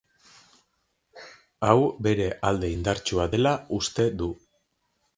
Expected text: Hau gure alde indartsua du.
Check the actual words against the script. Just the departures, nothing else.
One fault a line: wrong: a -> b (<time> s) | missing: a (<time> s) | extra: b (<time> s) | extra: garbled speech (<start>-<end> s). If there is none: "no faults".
wrong: gure -> bere (2.1 s)
extra: dela uste (3.3 s)